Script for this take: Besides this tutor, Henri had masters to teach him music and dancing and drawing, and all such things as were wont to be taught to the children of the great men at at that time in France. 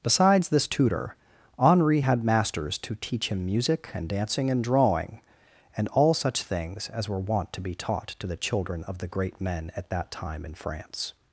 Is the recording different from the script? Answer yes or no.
yes